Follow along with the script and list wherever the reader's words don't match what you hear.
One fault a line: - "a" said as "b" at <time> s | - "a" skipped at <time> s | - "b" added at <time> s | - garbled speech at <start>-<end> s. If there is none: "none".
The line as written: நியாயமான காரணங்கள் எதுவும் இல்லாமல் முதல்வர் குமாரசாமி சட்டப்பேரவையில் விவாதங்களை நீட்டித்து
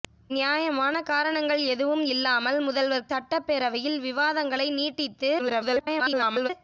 - "குமாரசாமி" skipped at 3.1 s
- garbled speech at 5.4-6.5 s